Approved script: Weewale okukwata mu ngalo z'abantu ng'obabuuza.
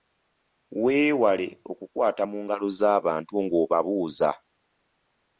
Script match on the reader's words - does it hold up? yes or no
yes